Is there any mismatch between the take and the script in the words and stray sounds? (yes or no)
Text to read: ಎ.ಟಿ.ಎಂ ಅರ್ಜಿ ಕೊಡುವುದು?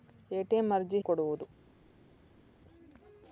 no